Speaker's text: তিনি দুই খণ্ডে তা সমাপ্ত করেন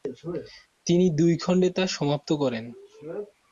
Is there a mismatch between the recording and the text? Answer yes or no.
no